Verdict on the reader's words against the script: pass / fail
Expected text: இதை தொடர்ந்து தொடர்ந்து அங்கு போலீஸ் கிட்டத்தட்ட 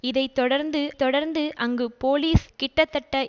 pass